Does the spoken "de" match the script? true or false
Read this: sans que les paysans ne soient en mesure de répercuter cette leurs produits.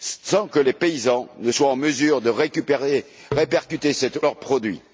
true